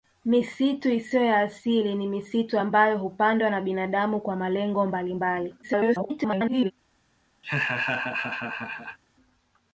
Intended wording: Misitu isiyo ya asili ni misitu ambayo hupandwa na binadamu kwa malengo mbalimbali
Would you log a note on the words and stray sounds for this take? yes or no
yes